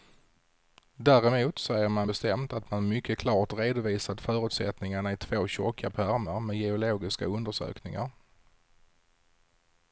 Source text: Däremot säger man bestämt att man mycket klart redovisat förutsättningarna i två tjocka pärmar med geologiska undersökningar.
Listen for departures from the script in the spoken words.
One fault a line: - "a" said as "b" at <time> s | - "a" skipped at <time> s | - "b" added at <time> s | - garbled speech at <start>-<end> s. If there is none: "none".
none